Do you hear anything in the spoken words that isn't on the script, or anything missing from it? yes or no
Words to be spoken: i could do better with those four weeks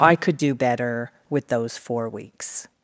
no